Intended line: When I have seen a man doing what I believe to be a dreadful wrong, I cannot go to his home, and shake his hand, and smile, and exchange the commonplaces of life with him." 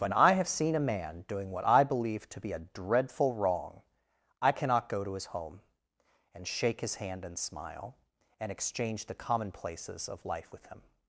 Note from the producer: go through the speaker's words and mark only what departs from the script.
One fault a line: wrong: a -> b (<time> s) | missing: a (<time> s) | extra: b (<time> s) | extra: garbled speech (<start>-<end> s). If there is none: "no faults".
no faults